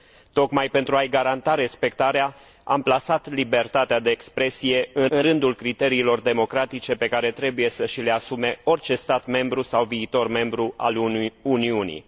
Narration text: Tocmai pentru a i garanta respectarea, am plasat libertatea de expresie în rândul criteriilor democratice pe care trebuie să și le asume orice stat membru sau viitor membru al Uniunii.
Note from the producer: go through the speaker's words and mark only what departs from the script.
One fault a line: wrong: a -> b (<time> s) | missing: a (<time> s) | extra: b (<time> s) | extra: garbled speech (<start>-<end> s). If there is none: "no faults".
extra: în (5.1 s)